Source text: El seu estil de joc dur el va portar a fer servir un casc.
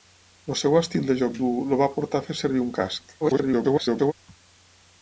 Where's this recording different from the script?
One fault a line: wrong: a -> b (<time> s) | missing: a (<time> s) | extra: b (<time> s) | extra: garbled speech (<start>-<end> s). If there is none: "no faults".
extra: garbled speech (3.2-4.1 s)